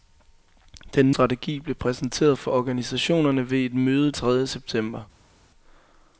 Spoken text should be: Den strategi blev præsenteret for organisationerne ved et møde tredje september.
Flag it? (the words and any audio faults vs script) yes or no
no